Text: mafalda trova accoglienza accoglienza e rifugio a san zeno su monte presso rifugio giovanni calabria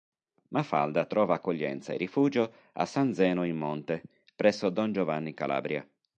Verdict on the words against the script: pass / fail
fail